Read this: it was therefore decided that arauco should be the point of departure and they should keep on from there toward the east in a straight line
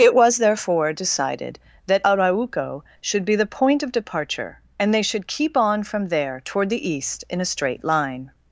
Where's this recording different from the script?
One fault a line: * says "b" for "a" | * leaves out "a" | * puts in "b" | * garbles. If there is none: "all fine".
all fine